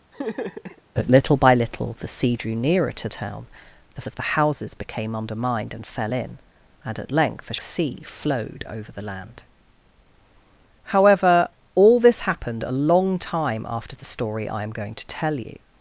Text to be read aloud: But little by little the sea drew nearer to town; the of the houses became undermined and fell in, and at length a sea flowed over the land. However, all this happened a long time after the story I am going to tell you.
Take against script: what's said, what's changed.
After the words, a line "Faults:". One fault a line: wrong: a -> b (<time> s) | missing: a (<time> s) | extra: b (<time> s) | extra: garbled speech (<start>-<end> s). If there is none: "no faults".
But little by little the sea drew nearer to town; the of the houses became undermined and fell in, and at length a sea flowed over the land. However, all this happened a long time after the story I am going to tell you.
Faults:
no faults